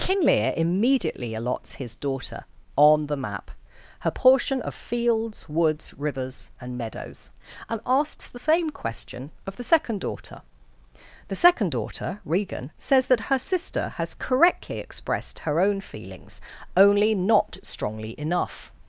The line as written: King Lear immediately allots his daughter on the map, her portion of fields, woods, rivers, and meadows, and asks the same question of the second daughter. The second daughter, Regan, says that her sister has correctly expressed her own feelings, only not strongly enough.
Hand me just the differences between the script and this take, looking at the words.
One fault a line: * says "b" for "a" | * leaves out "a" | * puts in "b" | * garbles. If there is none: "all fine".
all fine